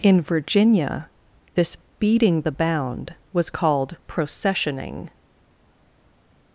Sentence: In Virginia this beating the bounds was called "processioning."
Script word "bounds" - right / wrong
wrong